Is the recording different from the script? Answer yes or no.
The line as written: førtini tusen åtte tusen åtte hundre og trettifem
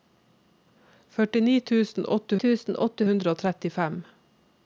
no